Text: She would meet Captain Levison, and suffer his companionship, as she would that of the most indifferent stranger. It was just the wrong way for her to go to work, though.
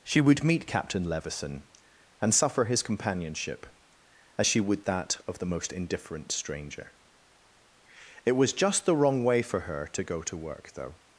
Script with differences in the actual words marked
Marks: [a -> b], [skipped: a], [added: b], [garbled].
She would meet Captain Levison, and suffer his companionship, as she would that of the most indifferent stranger. It was just the wrong way for her to go to work, though.